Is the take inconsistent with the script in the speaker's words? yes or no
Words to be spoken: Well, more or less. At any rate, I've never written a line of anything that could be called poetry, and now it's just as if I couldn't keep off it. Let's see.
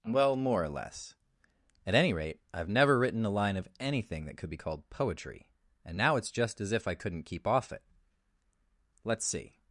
no